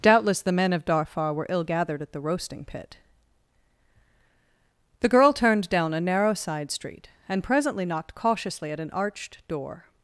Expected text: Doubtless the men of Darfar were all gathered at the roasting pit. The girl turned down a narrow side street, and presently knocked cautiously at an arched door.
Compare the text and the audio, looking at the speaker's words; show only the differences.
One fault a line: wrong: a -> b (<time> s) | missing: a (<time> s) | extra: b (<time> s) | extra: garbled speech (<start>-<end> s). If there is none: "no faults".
wrong: all -> ill (1.5 s)